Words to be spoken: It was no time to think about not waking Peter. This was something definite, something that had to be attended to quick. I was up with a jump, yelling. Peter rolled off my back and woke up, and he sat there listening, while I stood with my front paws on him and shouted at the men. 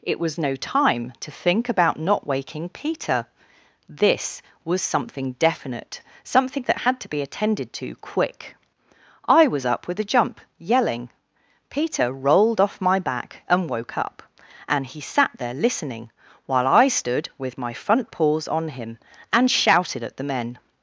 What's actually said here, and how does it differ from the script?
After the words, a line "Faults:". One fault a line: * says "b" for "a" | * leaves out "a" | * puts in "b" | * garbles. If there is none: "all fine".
It was no time to think about not waking Peter. This was something definite, something that had to be attended to quick. I was up with a jump, yelling. Peter rolled off my back and woke up, and he sat there listening, while I stood with my front paws on him and shouted at the men.
Faults:
all fine